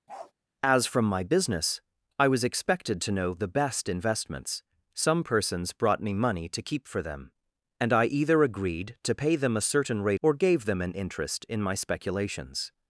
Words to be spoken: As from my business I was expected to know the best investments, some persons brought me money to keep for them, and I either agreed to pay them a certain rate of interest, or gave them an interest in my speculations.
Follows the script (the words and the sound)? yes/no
no